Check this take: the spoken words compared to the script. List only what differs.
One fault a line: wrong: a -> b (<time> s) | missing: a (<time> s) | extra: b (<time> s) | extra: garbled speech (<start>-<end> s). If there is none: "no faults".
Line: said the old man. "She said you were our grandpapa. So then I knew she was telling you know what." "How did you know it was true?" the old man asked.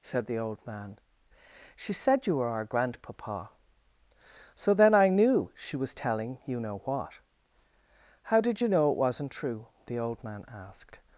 wrong: was -> wasn't (9.0 s)